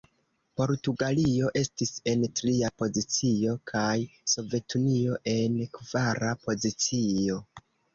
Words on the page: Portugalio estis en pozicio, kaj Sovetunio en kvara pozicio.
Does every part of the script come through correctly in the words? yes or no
no